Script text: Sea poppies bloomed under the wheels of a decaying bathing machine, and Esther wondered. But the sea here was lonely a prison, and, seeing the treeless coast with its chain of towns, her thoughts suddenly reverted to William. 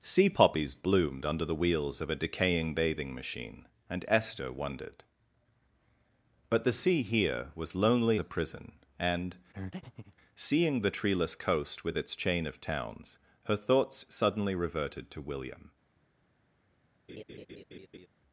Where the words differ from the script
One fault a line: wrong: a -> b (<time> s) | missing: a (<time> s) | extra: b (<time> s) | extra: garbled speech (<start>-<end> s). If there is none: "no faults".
no faults